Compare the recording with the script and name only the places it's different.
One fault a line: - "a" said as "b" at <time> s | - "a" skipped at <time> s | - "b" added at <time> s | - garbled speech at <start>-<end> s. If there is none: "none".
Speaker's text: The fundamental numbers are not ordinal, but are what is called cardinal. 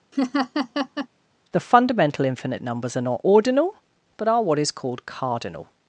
- "infinite" added at 2.2 s